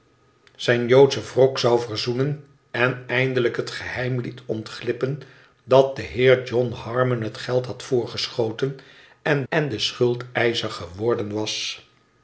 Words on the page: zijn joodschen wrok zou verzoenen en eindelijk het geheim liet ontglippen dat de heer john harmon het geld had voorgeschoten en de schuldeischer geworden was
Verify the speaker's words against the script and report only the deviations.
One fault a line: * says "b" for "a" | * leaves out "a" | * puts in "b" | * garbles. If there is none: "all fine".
* puts in "en"